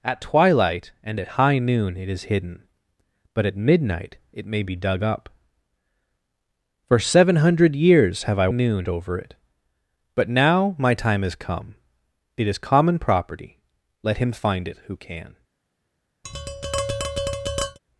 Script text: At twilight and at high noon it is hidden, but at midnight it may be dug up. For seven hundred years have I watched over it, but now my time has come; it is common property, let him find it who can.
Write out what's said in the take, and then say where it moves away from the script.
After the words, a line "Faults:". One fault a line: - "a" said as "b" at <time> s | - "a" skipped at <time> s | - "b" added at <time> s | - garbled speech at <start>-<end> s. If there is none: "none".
At twilight and at high noon it is hidden, but at midnight it may be dug up. For seven hundred years have I noon over it, but now my time has come; it is common property, let him find it who can.
Faults:
- "watched" said as "noon" at 8.5 s